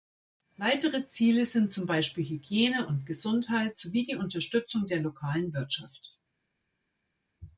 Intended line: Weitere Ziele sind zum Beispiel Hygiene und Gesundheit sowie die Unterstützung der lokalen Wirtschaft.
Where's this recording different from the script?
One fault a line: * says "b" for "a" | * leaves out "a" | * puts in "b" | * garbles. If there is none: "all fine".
all fine